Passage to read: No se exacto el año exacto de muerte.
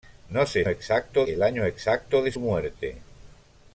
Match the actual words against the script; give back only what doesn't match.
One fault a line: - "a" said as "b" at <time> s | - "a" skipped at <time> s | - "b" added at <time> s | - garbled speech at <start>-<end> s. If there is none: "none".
none